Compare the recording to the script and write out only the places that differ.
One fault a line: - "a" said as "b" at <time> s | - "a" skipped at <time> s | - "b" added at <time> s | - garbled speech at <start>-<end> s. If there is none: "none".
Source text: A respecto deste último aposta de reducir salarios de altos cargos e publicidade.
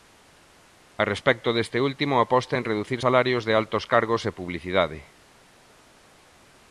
- "de" said as "en" at 2.6 s